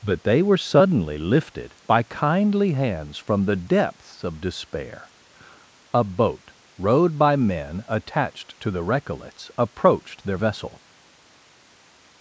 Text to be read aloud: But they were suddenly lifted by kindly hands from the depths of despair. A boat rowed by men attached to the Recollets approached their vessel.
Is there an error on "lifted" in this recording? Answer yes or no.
no